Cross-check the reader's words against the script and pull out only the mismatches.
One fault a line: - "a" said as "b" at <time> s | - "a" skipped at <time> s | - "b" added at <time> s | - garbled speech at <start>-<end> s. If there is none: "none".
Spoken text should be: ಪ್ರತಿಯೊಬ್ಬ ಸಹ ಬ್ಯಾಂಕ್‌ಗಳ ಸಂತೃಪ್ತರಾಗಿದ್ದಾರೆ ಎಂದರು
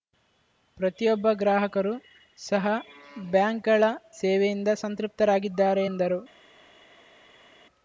- "ಗ್ರಾಹಕರು" added at 1.3 s
- "ಸೇವೆಯಿಂದ" added at 4.2 s